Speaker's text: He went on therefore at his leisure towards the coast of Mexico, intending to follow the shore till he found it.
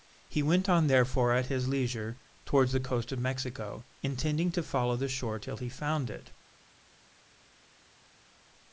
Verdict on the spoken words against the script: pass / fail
pass